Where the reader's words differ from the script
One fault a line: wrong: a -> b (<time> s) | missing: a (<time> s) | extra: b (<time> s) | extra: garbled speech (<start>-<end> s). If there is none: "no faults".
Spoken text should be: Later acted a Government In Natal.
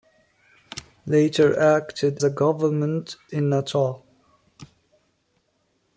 no faults